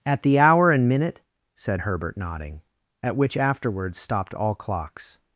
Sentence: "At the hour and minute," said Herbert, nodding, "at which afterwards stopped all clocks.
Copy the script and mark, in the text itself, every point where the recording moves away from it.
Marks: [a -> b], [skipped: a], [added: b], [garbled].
"At the hour and minute," said Herbert, nodding, "at which afterwards stopped all clocks.